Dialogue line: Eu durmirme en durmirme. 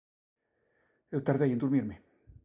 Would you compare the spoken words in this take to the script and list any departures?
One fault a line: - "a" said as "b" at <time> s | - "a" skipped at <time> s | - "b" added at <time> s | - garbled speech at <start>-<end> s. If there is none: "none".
- "durmirme" said as "tardei" at 1.3 s